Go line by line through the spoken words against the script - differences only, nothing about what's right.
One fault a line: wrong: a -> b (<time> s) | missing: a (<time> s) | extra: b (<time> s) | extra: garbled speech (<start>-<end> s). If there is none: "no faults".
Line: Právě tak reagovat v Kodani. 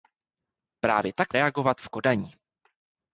no faults